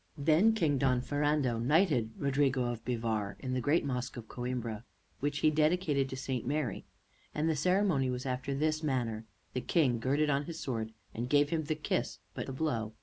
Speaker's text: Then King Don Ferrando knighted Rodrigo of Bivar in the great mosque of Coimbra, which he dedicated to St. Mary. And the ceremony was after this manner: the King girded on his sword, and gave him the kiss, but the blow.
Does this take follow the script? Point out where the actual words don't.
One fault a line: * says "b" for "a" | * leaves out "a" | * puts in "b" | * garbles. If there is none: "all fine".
all fine